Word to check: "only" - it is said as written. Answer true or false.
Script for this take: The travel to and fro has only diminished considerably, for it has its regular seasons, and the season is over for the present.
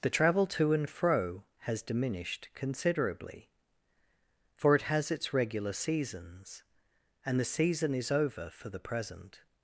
false